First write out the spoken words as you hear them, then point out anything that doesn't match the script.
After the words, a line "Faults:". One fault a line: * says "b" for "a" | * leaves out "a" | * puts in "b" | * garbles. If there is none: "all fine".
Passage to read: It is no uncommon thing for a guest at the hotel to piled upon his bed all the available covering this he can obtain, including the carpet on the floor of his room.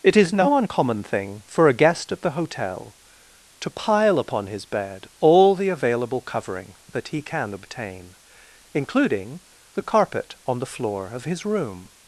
It is no uncommon thing for a guest at the hotel to pile upon his bed all the available covering that he can obtain, including the carpet on the floor of his room.
Faults:
* says "pile" for "piled"
* says "that" for "this"